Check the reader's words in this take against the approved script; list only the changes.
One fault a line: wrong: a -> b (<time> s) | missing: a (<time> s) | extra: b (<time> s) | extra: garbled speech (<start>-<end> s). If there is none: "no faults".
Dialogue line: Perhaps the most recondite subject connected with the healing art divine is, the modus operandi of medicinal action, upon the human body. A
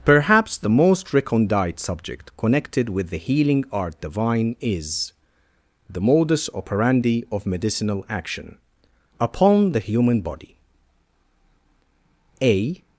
no faults